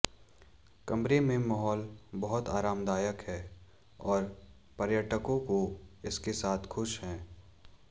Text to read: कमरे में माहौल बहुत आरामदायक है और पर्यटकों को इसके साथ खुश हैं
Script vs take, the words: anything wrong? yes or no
no